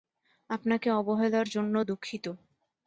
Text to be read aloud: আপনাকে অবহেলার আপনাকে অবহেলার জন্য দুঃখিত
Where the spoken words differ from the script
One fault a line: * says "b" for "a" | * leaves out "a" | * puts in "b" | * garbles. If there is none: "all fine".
* leaves out "আপনাকে অবহেলার"